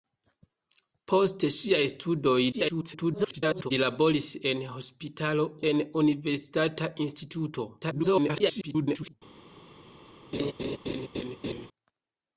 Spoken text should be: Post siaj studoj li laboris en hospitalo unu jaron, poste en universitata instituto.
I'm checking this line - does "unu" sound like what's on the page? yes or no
no